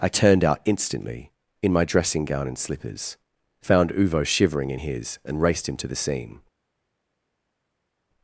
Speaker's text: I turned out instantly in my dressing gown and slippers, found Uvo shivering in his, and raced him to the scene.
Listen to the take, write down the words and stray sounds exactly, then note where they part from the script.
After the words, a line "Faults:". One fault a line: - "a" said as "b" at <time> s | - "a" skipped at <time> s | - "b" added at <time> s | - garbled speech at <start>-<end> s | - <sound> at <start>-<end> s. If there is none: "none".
I turned out instantly in my dressing gown and slippers, found Uvo shivering in his, and raced him to the scene.
Faults:
none